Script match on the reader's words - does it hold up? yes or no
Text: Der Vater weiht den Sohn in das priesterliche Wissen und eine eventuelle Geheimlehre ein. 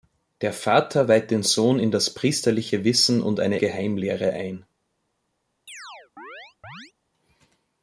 no